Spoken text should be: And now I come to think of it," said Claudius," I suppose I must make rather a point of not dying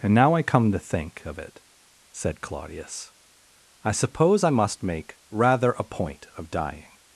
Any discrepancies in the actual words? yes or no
yes